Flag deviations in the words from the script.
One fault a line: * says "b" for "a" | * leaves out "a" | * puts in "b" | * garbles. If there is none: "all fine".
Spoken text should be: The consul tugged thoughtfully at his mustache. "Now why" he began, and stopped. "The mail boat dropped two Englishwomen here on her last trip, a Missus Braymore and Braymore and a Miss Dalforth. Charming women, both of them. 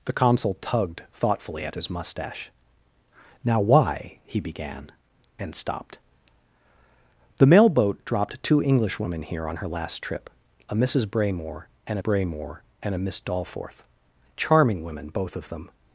all fine